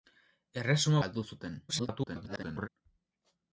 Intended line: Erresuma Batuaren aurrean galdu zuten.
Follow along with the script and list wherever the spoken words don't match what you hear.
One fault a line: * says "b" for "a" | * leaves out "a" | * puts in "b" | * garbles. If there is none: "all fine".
* leaves out "Batuaren aurrean"
* garbles